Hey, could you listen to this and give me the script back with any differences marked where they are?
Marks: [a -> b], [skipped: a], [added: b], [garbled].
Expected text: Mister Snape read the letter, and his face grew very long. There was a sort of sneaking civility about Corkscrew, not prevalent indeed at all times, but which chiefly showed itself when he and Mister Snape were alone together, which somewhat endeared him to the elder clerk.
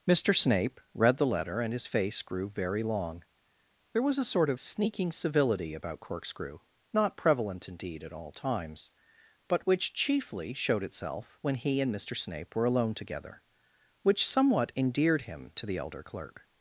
Mister Snape read the letter, and his face grew very long. There was a sort of sneaking civility about Corkscrew, not prevalent indeed at all times, but which chiefly showed itself when he and Mister Snape were alone together, which somewhat endeared him to the elder clerk.